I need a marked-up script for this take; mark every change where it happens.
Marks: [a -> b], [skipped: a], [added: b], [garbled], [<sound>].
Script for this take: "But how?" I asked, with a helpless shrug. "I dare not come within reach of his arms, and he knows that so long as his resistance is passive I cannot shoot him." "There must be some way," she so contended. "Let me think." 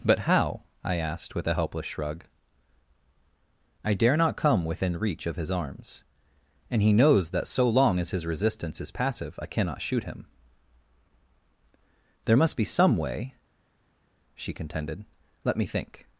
"But how?" I asked, with a helpless shrug. "I dare not come within reach of his arms, and he knows that so long as his resistance is passive I cannot shoot him." "There must be some way," she [skipped: so] contended. "Let me think."